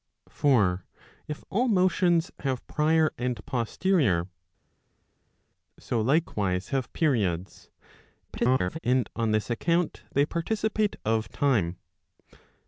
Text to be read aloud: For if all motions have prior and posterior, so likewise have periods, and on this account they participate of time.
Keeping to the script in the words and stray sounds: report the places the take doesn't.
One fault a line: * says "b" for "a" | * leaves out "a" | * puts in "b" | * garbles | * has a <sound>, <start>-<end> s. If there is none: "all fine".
* garbles